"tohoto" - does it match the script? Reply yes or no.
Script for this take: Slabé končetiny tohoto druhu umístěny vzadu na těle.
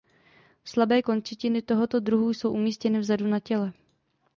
yes